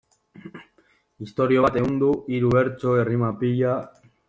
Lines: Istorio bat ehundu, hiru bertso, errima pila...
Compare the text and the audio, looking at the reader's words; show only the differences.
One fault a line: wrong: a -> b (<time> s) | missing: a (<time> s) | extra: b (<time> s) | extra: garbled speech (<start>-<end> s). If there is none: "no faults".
no faults